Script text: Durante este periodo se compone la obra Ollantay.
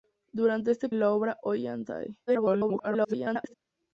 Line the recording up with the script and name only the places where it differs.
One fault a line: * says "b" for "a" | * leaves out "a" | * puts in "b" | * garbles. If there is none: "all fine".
* leaves out "periodo se compone"
* garbles